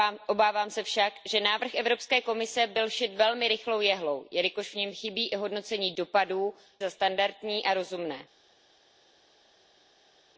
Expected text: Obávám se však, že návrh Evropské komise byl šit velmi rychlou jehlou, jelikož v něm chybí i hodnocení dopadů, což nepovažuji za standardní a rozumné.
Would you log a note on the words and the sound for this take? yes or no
yes